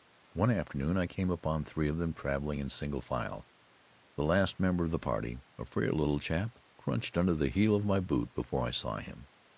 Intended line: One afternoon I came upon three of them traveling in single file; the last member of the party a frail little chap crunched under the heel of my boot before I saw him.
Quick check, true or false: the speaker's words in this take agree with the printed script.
true